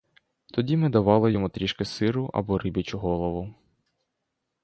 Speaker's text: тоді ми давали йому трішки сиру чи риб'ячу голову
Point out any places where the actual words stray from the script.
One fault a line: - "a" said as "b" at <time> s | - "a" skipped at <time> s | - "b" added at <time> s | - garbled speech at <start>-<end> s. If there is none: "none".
- "чи" said as "або" at 2.3 s